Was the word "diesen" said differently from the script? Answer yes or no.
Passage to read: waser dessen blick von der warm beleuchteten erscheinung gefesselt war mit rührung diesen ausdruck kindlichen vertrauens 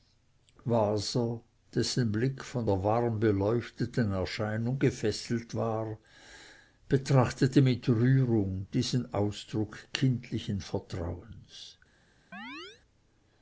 no